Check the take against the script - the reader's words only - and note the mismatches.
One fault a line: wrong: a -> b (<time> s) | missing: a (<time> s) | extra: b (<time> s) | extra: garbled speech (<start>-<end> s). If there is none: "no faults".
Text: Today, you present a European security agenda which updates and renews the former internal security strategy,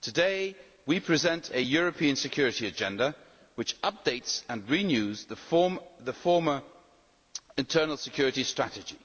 wrong: you -> we (0.9 s)